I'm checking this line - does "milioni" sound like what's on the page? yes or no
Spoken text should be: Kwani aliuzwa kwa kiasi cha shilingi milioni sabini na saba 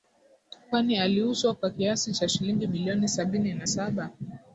yes